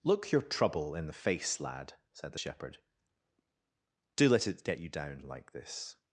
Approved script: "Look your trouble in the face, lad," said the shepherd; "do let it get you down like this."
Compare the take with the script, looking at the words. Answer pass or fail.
pass